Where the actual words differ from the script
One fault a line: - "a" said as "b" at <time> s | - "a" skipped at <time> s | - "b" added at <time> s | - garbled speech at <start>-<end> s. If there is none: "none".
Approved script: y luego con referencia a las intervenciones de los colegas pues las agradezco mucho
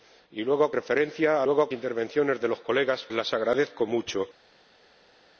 - "con" skipped at 0.7 s
- "las" said as "luego" at 1.4 s
- "pues" skipped at 3.1 s